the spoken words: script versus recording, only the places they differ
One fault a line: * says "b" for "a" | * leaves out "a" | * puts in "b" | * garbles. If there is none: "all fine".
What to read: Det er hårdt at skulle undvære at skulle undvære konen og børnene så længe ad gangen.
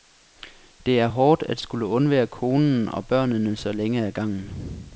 * leaves out "at skulle undvære"